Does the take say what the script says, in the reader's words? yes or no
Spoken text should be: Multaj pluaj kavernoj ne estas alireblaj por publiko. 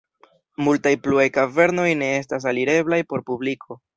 yes